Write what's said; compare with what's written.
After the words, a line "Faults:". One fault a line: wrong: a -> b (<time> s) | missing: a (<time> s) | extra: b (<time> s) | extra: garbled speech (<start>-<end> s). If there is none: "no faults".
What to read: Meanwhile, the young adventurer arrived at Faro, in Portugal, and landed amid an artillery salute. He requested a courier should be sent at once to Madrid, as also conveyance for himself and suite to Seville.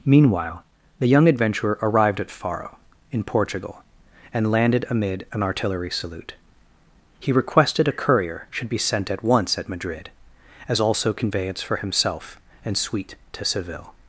Meanwhile, the young adventurer arrived at Faro, in Portugal, and landed amid an artillery salute. He requested a courier should be sent at once at Madrid, as also conveyance for himself and suite to Seville.
Faults:
wrong: to -> at (9.6 s)